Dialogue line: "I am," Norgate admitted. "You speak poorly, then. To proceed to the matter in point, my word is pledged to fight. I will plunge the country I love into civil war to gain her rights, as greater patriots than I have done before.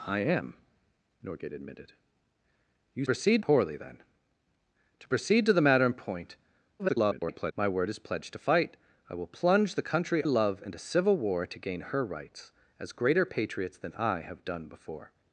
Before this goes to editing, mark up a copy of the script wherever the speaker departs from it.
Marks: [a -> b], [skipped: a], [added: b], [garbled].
"I am," Norgate admitted. "You [speak -> proceed] poorly, then. To proceed to the matter in point, [garbled] my word is pledged to fight. I will plunge the country [skipped: I] love into civil war to gain her rights, as greater patriots than I have done before.